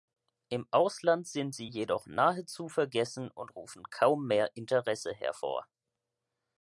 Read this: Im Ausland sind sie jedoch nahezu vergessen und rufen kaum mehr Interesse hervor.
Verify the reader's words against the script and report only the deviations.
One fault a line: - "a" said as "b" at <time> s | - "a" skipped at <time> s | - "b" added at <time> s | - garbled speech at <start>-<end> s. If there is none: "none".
none